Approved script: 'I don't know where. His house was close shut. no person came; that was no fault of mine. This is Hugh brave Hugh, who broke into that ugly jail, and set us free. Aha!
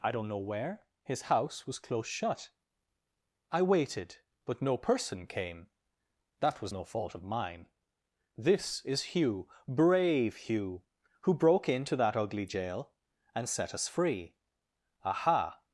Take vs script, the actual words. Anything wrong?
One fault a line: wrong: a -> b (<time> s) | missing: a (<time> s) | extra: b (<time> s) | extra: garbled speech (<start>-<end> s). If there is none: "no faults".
extra: I waited but (3.5 s)